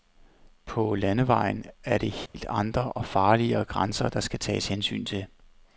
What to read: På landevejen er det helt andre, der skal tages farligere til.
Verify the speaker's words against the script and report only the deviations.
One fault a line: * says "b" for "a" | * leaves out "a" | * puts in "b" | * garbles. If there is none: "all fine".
* puts in "og farligere grænser"
* says "hensyn" for "farligere"